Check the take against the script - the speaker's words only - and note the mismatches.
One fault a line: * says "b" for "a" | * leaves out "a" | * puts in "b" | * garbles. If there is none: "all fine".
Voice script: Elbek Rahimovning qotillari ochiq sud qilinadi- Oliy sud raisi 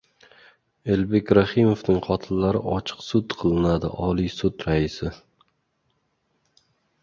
all fine